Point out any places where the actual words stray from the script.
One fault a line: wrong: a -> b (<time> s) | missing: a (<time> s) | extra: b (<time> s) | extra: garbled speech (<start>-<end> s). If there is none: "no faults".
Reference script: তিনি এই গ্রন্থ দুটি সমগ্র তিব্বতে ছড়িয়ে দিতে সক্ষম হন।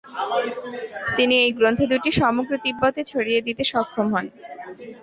no faults